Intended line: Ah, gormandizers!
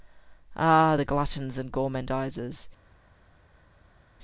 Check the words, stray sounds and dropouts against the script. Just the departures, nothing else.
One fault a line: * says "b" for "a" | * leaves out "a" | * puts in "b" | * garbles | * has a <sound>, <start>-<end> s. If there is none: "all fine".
* puts in "the gluttons and"